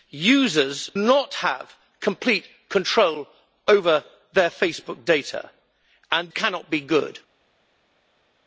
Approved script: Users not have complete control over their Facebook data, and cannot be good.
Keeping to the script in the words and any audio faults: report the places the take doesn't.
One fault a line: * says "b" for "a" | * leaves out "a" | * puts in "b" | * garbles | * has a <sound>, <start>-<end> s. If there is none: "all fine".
all fine